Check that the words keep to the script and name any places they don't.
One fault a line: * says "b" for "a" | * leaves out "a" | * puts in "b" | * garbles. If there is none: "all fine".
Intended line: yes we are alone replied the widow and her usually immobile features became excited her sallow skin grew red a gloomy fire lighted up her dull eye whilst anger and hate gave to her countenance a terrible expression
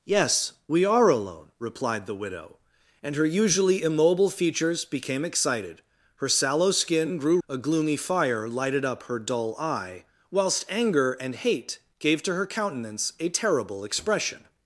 * leaves out "red"